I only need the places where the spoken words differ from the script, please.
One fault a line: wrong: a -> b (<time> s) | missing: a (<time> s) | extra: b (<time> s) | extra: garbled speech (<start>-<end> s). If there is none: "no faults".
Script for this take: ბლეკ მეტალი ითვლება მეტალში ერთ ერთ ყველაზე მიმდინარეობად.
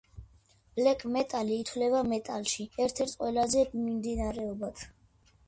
no faults